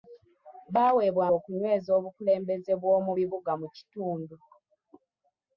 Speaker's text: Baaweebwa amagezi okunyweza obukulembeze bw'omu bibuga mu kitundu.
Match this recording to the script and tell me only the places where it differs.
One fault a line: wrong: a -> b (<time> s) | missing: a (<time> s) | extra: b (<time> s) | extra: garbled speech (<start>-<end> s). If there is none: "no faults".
missing: amagezi (1.2 s)